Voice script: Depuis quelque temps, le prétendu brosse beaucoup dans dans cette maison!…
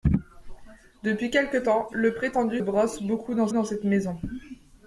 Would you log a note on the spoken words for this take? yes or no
no